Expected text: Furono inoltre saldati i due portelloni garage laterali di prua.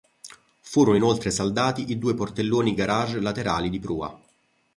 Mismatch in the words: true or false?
false